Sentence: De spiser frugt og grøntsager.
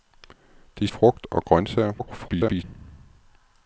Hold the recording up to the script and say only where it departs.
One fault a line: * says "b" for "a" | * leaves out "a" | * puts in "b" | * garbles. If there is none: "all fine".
* leaves out "spiser"
* garbles